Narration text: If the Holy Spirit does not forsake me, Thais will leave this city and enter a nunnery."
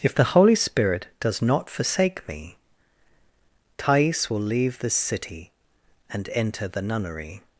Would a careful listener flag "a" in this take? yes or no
yes